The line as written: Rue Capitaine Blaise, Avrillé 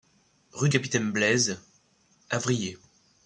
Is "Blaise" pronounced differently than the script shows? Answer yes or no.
no